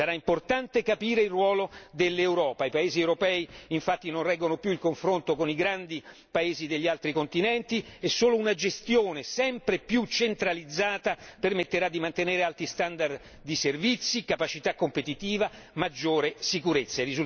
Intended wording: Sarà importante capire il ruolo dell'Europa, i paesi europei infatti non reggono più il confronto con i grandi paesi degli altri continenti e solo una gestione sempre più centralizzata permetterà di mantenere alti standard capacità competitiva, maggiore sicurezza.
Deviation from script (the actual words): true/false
true